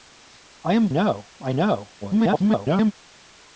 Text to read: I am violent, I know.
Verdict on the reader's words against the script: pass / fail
fail